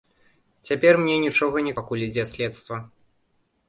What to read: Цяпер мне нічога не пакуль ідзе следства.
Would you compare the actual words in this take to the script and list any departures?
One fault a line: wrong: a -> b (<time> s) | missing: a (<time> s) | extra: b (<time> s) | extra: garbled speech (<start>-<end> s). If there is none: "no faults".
no faults